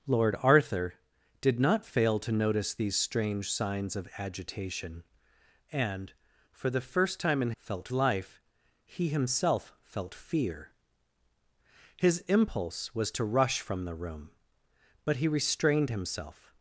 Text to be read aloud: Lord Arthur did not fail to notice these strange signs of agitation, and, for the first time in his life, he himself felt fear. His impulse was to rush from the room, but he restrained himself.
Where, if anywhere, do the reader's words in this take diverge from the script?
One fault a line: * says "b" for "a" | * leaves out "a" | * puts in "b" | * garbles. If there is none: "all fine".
* says "felt" for "his"